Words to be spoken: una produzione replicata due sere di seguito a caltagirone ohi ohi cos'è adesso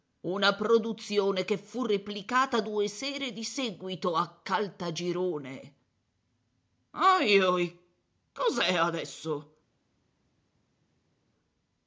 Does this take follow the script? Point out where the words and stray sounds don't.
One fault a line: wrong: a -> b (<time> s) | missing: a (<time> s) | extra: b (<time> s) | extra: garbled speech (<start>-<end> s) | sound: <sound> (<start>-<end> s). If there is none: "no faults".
extra: che fu (1.4 s)